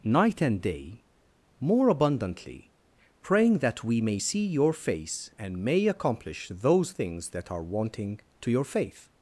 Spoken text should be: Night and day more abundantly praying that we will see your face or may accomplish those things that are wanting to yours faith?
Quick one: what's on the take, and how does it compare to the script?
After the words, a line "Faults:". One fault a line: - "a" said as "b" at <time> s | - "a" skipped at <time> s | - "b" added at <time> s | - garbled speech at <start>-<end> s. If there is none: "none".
Night and day more abundantly praying that we may see your face and may accomplish those things that are wanting to your faith?
Faults:
- "will" said as "may" at 4.0 s
- "or" said as "and" at 5.4 s
- "yours" said as "your" at 8.5 s